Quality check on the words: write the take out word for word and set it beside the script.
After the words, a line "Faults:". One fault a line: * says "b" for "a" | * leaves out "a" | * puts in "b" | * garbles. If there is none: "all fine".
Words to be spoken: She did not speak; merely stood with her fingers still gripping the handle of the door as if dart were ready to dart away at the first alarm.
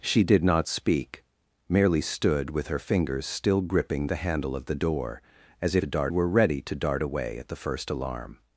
She did not speak; merely stood with her fingers still gripping the handle of the door as if dart were ready to dart away at the first alarm.
Faults:
all fine